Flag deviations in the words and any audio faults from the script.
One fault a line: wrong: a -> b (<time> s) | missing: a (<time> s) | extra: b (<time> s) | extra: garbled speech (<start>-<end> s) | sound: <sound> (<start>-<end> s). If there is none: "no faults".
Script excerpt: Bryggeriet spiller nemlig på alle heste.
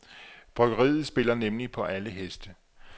no faults